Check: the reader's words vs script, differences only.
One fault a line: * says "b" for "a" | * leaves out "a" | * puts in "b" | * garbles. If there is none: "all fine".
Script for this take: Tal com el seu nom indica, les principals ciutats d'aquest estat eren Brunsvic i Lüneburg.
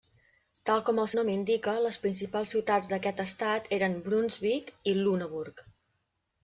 * leaves out "seu"